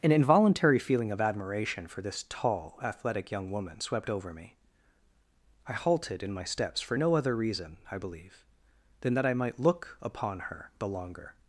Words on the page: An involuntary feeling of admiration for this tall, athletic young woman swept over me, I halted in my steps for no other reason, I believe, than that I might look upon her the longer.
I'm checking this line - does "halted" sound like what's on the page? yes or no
yes